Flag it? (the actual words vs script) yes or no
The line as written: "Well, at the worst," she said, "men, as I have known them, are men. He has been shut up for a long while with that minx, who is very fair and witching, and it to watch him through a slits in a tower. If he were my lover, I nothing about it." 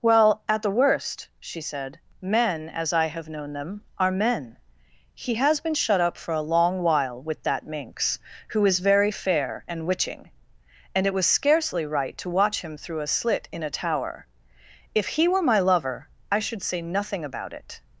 yes